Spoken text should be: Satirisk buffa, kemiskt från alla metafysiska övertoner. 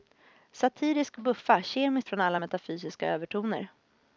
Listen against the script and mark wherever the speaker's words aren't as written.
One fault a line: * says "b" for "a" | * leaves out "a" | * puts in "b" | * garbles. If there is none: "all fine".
all fine